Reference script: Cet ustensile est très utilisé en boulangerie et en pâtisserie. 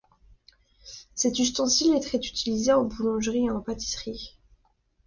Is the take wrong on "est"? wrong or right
right